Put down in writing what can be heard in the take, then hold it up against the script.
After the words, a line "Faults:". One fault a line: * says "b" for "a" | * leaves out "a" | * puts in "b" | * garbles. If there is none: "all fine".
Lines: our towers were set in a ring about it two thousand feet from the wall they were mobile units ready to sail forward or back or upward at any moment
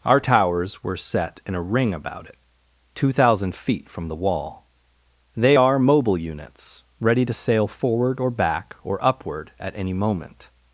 our towers were set in a ring about it two thousand feet from the wall they are mobile units ready to sail forward or back or upward at any moment
Faults:
* says "are" for "were"